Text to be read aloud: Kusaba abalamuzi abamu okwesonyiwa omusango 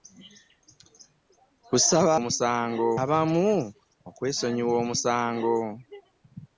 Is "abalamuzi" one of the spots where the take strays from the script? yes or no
yes